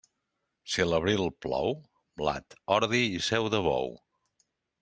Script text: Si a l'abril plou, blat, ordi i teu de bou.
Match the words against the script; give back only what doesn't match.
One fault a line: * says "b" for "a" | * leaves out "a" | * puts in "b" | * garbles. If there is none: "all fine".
* says "seu" for "teu"